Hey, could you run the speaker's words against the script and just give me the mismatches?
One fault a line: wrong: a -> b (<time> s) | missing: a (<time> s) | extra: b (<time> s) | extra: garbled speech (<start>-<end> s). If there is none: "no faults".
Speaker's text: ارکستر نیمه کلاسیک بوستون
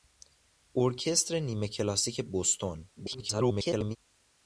extra: garbled speech (3.0-4.0 s)